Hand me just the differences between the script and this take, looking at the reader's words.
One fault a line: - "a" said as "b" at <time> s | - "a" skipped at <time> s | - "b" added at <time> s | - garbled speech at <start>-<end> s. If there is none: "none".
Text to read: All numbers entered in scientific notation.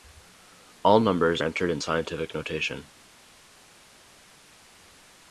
none